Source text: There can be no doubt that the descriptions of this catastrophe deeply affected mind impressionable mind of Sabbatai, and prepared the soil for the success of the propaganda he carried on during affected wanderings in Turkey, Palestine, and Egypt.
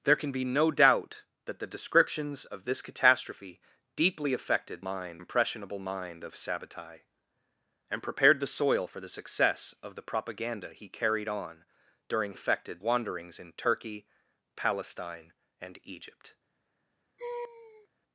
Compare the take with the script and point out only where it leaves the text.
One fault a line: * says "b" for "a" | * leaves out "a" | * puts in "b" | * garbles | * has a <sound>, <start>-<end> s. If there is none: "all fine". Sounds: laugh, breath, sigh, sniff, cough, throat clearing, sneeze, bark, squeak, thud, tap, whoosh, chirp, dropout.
* has a laugh, 17.2-17.9 s